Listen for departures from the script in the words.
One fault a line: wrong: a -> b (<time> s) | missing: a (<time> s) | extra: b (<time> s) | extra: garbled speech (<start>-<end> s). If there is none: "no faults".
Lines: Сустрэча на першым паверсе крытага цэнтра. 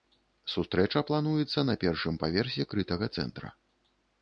extra: плануецца (1.1 s)